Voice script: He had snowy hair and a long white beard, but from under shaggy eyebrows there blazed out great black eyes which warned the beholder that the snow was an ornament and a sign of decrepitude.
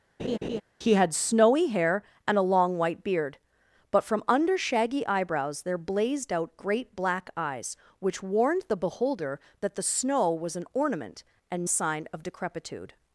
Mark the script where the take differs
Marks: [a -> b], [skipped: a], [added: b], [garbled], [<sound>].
[laugh] He had snowy hair and a long white beard, but from under shaggy eyebrows there blazed out great black eyes which warned the beholder that the snow was an ornament and a sign of decrepitude.